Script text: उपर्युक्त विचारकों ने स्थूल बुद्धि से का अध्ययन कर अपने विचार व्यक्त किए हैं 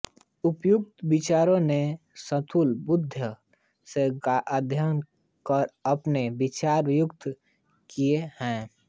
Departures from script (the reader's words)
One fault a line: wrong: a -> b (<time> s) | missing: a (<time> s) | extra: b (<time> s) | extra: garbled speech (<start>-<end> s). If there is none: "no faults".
no faults